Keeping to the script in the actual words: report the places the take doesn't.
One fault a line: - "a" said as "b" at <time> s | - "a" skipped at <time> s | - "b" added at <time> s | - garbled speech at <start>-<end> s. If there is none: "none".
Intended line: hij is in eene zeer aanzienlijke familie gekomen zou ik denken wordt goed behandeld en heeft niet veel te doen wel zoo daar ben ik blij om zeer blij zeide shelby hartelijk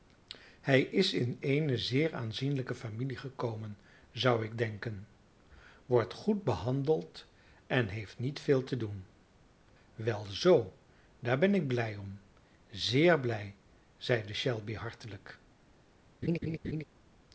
none